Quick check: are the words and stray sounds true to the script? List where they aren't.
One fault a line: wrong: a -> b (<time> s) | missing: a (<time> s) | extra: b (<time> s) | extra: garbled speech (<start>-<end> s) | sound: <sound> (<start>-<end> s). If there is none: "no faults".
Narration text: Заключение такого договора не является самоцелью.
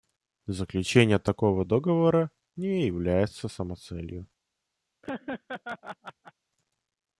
sound: laugh (5.0-6.3 s)